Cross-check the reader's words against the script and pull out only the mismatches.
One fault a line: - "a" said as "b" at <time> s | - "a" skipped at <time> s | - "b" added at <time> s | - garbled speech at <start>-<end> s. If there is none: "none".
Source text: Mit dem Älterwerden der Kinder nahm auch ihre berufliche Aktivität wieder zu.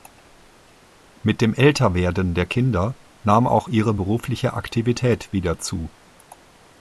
none